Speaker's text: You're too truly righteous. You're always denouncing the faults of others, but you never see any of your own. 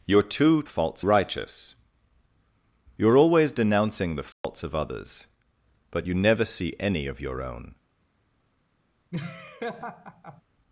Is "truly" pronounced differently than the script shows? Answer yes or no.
yes